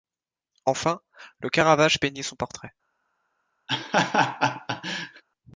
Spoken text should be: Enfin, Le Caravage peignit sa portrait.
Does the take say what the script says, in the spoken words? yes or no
no